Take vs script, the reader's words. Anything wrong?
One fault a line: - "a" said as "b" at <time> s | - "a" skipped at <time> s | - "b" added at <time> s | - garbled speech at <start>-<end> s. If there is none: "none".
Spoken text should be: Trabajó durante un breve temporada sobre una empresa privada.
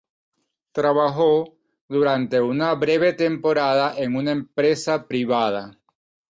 - "un" said as "una" at 2.4 s
- "sobre" said as "en" at 4.0 s